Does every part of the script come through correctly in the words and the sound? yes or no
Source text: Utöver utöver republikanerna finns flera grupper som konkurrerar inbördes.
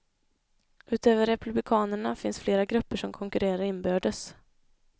no